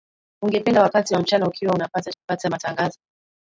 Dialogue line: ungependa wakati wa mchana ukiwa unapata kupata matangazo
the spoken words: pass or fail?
pass